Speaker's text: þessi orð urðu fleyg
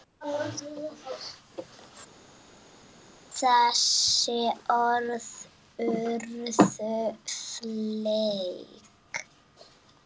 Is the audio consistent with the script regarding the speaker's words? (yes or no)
yes